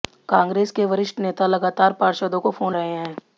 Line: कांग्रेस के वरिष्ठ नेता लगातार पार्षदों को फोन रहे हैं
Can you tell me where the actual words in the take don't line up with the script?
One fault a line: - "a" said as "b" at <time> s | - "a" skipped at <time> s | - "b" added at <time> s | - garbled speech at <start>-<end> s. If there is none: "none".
none